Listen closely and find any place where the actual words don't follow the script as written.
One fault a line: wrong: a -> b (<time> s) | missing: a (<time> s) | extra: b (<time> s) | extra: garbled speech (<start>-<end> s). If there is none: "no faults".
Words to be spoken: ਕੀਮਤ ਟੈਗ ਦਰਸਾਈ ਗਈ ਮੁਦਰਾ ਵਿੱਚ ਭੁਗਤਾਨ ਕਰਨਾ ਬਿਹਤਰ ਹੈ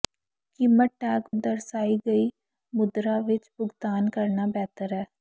no faults